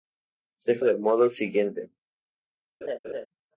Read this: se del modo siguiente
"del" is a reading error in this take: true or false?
false